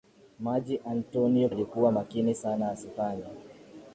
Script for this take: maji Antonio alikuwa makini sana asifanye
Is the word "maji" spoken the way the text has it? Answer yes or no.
yes